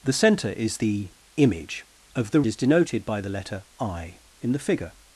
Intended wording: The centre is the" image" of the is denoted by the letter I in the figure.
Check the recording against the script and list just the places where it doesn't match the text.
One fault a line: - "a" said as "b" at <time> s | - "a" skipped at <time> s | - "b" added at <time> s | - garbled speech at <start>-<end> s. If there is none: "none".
none